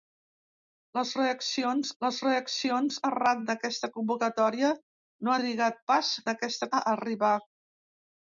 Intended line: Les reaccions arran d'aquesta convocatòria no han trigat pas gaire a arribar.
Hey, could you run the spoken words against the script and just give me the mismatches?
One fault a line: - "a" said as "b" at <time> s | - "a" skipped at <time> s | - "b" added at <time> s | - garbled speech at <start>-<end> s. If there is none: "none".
- "les reaccions" added at 2.0 s
- "han" skipped at 5.4 s
- "gaire" said as "d'aquesta" at 6.3 s